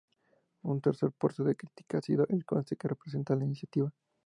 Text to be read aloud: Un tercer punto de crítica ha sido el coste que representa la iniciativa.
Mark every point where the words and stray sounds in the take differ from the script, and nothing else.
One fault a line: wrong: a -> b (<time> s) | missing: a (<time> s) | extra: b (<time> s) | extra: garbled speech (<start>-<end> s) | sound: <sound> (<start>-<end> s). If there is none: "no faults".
no faults